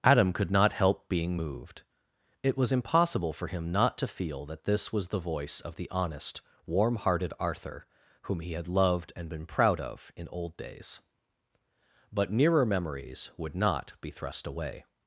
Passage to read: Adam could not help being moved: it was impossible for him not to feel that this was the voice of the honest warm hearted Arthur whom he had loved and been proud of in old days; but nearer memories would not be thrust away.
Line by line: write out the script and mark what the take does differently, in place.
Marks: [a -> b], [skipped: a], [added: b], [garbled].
Adam could not help being moved: it was impossible for him not to feel that this was the voice of the honest warm hearted Arthur whom he had loved and been proud of in old days; but nearer memories would not be thrust away.